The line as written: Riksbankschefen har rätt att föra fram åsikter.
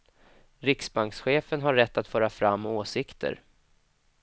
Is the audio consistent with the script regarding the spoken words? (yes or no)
yes